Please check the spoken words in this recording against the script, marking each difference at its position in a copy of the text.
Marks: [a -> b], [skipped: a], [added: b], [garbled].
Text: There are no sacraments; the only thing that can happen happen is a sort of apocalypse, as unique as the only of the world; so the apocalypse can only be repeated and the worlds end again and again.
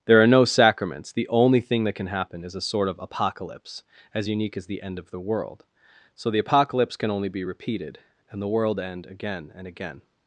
There are no sacraments; the only thing that can happen [skipped: happen] is a sort of apocalypse, as unique as the [only -> end] of the world; so the apocalypse can only be repeated and the [worlds -> world] end again and again.